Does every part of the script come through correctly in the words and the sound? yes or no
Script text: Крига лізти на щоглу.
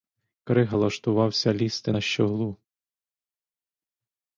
no